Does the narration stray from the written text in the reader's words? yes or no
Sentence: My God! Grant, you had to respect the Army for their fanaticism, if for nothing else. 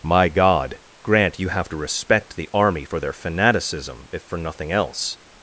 yes